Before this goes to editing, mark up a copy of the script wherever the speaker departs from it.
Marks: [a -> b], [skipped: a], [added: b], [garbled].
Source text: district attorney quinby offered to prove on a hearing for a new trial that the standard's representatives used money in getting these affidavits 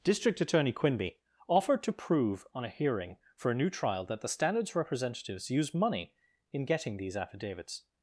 district attorney quinby offered to prove on a hearing for a new trial that the standard's representatives used money in getting these affidavits